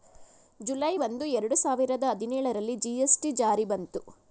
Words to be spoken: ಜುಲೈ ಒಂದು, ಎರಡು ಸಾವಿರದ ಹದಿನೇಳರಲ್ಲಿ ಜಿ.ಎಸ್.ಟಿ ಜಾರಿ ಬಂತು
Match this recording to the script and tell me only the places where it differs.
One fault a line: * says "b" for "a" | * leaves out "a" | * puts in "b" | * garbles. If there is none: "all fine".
all fine